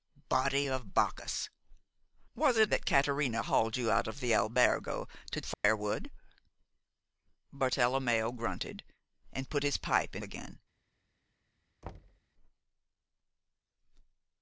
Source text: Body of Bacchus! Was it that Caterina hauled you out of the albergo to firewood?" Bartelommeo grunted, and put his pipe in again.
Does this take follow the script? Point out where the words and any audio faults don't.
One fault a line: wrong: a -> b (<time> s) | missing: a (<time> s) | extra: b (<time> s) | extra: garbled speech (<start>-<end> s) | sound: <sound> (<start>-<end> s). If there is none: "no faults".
sound: dropout (5.5-5.6 s)
sound: thud (11.8-12.2 s)